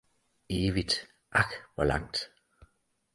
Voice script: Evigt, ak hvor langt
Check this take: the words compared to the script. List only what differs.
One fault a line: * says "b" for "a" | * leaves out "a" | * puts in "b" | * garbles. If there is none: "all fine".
all fine